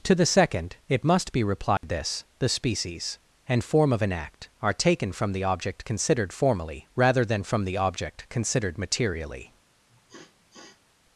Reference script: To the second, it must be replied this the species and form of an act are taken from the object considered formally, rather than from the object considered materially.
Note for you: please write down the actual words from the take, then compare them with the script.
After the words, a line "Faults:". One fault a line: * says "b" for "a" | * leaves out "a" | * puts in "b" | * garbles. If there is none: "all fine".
To the second, it must be replied this the species and form of an act are taken from the object considered formally, rather than from the object considered materially.
Faults:
all fine